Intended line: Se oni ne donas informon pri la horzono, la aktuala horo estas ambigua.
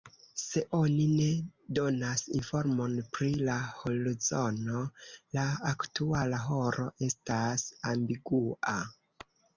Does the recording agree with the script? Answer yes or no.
yes